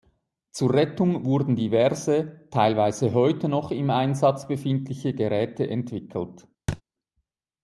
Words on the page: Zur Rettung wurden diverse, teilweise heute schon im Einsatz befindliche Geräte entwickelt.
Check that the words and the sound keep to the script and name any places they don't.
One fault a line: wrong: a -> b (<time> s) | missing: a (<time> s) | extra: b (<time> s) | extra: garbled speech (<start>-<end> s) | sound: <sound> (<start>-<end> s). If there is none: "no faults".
wrong: schon -> noch (3.5 s)
sound: thud (6.7-6.8 s)